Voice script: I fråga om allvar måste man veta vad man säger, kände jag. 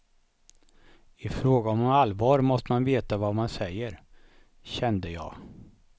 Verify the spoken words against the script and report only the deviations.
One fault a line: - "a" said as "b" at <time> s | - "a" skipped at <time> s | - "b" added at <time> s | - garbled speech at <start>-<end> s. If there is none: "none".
none